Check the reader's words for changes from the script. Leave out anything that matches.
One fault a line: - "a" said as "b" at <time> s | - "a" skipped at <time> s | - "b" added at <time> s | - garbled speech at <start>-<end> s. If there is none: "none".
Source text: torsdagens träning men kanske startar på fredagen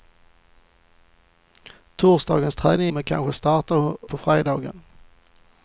none